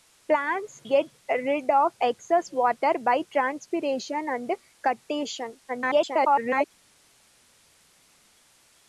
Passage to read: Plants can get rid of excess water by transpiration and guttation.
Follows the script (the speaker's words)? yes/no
no